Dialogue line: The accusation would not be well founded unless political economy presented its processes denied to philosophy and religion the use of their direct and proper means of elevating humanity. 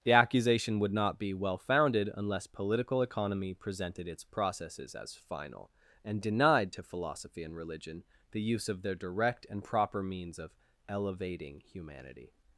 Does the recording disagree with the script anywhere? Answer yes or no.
yes